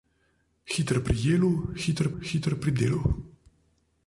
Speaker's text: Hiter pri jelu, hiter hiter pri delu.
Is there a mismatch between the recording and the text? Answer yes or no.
no